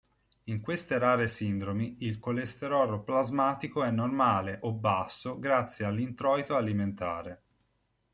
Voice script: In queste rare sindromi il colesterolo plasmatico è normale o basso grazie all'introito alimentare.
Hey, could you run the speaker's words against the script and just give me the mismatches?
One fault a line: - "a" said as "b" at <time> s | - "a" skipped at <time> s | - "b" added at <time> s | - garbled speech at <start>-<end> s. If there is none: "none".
none